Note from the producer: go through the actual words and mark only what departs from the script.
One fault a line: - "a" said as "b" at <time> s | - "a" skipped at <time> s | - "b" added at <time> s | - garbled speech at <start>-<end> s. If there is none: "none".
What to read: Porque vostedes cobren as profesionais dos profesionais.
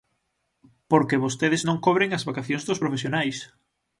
- "non" added at 1.7 s
- "profesionais" said as "vacacións" at 2.3 s